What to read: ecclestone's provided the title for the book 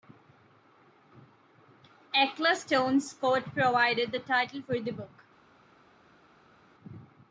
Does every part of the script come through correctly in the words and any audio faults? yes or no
no